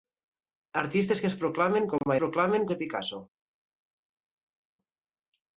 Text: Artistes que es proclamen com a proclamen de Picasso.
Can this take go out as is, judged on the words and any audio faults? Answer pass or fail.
pass